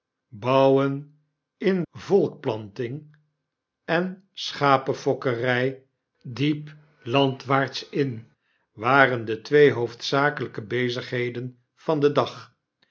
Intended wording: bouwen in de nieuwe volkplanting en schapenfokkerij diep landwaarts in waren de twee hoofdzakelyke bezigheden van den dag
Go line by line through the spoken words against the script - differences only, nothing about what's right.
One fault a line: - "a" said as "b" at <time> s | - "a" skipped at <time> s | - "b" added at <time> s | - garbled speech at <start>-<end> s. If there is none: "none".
- "de nieuwe" skipped at 1.9 s